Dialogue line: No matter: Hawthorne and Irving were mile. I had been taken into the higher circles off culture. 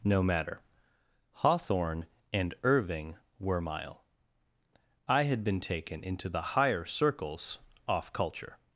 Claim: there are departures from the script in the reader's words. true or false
false